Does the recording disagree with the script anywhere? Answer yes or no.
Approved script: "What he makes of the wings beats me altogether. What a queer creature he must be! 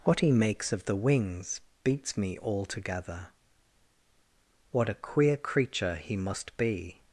no